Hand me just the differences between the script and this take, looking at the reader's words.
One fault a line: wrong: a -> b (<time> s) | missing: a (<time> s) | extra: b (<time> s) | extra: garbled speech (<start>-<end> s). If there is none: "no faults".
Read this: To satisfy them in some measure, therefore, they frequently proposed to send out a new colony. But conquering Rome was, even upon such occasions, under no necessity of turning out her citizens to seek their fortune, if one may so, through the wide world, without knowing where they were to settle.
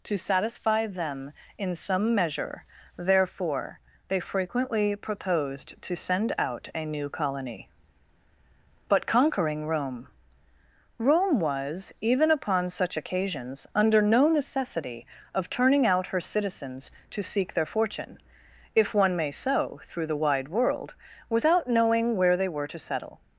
extra: Rome (11.0 s)